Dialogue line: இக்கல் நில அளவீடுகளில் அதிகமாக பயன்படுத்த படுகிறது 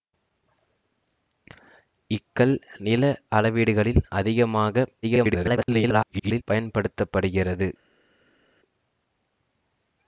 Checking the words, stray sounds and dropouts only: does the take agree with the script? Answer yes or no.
no